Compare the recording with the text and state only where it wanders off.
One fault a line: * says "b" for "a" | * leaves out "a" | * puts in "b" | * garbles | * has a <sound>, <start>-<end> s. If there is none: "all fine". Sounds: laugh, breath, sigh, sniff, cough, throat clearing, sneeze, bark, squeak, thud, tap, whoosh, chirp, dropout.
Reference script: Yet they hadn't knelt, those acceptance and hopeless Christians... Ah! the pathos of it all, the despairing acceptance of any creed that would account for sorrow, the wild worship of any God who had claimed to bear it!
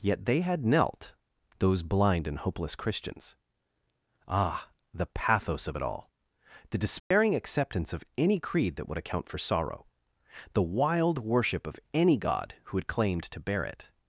* says "had" for "hadn't"
* says "blind" for "acceptance"
* has a dropout, 7.0-7.1 s